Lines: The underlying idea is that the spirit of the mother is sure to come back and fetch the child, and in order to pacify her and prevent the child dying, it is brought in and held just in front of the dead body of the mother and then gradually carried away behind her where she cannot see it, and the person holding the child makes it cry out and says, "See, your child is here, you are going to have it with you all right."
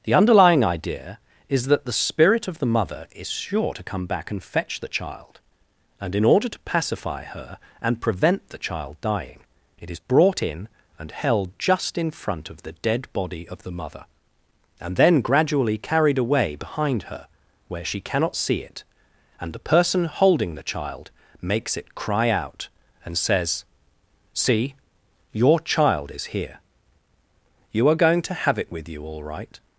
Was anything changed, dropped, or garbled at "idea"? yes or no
no